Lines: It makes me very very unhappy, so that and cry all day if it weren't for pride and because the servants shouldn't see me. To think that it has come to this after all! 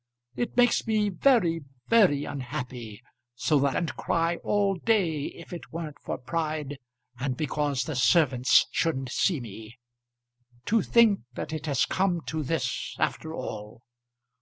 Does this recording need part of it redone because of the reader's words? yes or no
no